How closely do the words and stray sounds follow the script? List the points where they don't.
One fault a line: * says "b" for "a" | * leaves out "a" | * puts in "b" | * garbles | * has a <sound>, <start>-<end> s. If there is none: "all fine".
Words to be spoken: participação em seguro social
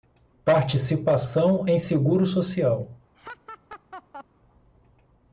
* has a laugh, 3.1-4.2 s